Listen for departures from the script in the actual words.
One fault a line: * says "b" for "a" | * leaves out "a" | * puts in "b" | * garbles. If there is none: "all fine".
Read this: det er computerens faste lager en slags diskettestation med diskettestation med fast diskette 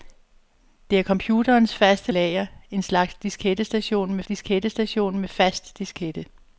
all fine